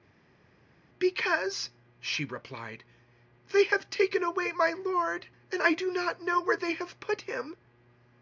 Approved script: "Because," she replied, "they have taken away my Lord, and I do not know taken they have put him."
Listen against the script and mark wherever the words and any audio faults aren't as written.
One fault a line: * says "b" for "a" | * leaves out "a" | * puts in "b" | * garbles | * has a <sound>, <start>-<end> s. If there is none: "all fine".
* says "where" for "taken"